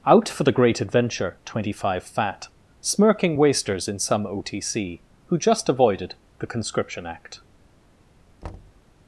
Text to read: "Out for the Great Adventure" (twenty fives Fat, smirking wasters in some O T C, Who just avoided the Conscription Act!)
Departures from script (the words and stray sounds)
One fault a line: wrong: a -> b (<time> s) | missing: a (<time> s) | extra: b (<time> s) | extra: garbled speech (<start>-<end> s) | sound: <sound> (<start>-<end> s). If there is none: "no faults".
wrong: fives -> five (1.7 s)
sound: thud (8.4-8.8 s)